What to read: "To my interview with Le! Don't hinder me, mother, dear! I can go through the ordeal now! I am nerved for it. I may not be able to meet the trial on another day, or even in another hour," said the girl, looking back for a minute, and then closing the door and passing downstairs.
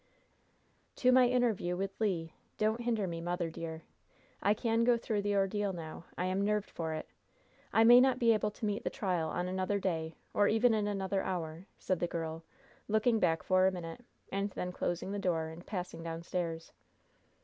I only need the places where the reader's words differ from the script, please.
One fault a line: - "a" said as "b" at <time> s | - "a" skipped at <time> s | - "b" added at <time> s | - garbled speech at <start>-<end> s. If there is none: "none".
none